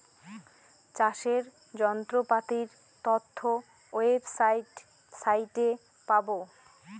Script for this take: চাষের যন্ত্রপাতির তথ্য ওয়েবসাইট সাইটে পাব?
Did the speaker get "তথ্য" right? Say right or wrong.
right